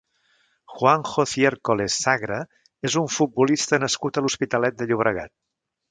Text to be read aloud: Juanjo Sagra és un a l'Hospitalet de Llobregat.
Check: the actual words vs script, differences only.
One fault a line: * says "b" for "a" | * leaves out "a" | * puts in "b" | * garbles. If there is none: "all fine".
* puts in "Ciércoles"
* puts in "futbolista nascut"